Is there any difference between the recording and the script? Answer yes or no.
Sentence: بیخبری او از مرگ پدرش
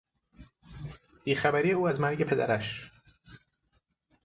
no